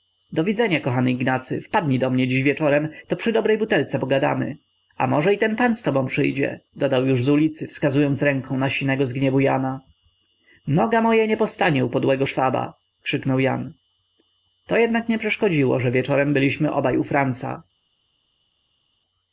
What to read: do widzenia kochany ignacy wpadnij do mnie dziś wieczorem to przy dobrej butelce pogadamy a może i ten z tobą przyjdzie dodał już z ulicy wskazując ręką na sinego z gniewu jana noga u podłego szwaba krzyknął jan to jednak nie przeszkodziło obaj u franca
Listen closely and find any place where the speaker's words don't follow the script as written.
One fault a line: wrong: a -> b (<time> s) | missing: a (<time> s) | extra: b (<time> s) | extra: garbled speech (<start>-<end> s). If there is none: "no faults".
extra: pan (5.5 s)
extra: moja nie postanie (11.0 s)
extra: że wieczorem byliśmy (15.8 s)